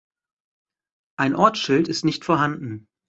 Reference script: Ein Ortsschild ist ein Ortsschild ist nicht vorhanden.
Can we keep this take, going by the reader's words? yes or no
no